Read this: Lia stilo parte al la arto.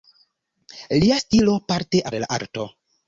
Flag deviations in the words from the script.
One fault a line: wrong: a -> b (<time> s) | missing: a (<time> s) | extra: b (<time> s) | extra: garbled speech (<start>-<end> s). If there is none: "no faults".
no faults